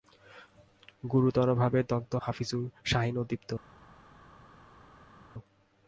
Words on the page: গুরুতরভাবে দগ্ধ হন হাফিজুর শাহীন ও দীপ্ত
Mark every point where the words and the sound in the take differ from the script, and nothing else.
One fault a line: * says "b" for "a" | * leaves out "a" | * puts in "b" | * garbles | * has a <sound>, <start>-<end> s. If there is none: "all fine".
* leaves out "হন"